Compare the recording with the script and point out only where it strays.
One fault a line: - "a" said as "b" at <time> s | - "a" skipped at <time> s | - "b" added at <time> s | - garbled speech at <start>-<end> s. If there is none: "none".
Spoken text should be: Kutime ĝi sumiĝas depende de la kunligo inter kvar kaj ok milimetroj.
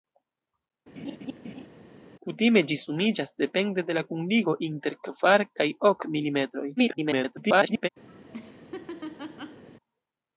- garbled speech at 6.8-7.9 s